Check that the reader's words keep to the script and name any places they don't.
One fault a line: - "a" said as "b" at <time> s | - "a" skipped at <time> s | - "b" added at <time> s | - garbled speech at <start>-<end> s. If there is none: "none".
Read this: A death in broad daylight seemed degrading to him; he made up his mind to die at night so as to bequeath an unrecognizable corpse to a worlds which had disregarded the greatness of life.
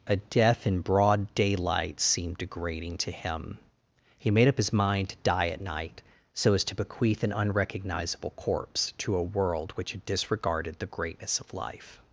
- "worlds" said as "world" at 9.2 s